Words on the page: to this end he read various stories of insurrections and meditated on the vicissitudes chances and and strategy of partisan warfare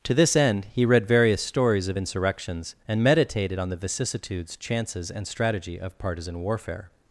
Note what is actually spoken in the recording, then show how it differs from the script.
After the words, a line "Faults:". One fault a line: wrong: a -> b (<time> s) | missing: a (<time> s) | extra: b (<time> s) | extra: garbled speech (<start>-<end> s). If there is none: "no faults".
to this end he read various stories of insurrections and meditated on the vicissitudes chances and strategy of partisan warfare
Faults:
missing: and (5.3 s)